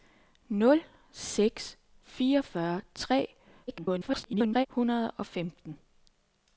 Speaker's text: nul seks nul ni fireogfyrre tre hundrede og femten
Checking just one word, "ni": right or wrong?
wrong